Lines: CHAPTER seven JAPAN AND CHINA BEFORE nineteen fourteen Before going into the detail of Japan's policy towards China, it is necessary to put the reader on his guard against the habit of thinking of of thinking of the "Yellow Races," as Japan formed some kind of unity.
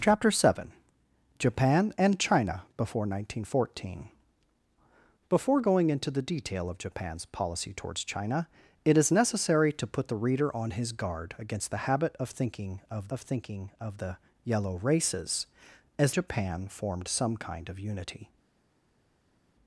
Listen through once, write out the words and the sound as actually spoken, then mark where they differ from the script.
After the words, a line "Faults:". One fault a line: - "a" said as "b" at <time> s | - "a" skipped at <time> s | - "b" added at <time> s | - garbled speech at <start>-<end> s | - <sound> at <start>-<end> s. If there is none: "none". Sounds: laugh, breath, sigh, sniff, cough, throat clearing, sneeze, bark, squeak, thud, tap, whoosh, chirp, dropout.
CHAPTER seven JAPAN AND CHINA BEFORE nineteen fourteen Before going into the detail of Japan's policy towards China, it is necessary to put the reader on his guard against the habit of thinking of of thinking of the "Yellow Races," as Japan formed some kind of unity.
Faults:
none